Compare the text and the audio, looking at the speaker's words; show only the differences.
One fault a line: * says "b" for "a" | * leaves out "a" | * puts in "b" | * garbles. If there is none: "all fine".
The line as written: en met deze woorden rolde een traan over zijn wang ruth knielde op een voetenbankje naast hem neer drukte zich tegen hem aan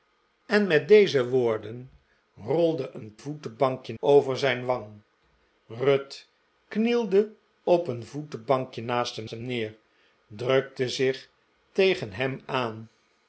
* says "voetenbankje" for "traan"
* puts in "hem"